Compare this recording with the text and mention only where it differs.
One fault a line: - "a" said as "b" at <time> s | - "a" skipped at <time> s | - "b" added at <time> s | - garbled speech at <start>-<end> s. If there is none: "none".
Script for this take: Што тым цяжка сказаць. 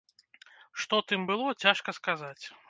- "было" added at 1.3 s